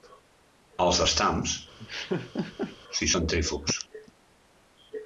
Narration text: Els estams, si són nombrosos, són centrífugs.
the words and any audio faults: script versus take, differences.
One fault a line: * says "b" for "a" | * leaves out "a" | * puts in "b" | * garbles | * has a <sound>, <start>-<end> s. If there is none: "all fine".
* has a laugh, 1.8-2.8 s
* leaves out "són nombrosos són"